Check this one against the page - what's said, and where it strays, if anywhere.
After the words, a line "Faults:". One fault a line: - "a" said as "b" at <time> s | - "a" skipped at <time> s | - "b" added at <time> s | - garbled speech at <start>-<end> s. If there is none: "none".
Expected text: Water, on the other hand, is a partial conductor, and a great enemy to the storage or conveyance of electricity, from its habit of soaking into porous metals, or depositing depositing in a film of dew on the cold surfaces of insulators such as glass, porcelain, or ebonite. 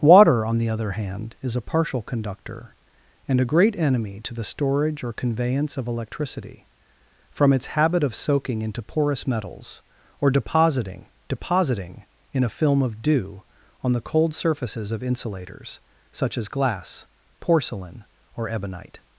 Water, on the other hand, is a partial conductor, and a great enemy to the storage or conveyance of electricity, from its habit of soaking into porous metals, or depositing depositing in a film of dew on the cold surfaces of insulators such as glass, porcelain, or ebonite.
Faults:
none